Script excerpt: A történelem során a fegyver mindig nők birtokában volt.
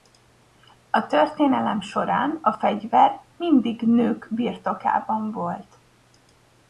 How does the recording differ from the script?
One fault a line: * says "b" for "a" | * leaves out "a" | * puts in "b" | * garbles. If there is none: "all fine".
all fine